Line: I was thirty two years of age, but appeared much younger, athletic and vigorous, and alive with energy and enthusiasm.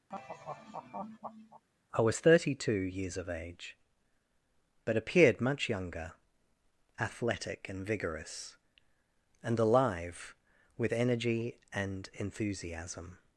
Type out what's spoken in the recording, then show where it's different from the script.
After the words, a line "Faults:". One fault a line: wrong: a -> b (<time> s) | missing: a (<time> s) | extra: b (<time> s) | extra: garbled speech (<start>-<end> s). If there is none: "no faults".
I was thirty two years of age, but appeared much younger, athletic and vigorous, and alive with energy and enthusiasm.
Faults:
no faults